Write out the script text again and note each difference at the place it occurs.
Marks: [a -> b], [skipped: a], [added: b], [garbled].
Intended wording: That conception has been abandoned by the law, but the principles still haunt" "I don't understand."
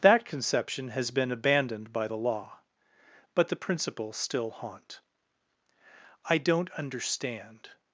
That conception has been abandoned by the law, but the principles still haunt" "I don't understand."